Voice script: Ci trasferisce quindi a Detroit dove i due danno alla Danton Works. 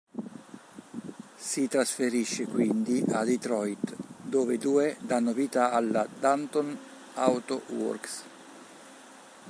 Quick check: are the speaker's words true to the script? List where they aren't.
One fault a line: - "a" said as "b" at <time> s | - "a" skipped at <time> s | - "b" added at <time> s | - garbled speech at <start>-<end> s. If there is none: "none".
- "Ci" said as "Si" at 1.4 s
- "vita" added at 5.3 s
- "Auto" added at 7.1 s